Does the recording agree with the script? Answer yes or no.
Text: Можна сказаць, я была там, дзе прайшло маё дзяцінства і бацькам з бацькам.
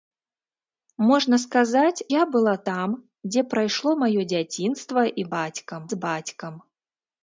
yes